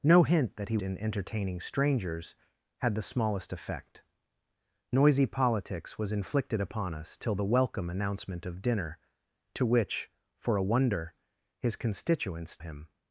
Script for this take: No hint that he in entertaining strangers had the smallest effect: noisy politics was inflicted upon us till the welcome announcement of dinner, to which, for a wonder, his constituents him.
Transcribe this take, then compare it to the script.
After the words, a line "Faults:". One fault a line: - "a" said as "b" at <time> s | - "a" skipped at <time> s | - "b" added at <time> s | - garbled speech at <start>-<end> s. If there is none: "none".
No hint that he in entertaining strangers had the smallest effect: noisy politics was inflicted upon us till the welcome announcement of dinner, to which, for a wonder, his constituents him.
Faults:
none